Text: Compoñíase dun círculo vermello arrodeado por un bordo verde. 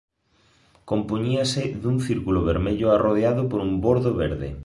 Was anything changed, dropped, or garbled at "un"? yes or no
no